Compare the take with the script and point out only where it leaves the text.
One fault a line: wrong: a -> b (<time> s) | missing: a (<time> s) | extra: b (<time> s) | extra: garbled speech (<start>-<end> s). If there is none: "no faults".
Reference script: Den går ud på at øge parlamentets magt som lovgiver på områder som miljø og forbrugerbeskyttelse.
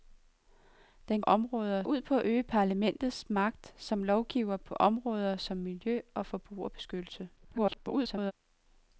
wrong: går -> områder (1.2 s)
extra: garbled speech (7.4-8.3 s)